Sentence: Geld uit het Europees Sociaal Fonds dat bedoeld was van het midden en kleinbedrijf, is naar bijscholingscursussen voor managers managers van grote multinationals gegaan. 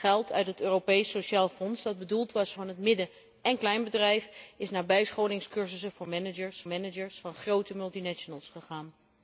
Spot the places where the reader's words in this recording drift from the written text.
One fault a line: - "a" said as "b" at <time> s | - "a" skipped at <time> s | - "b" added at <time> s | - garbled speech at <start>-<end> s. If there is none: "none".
none